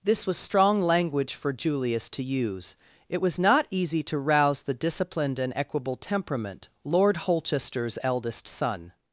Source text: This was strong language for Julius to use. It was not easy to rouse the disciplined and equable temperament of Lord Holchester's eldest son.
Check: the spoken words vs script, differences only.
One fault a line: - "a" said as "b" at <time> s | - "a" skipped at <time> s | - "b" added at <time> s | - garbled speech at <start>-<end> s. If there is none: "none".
- "of" skipped at 6.7 s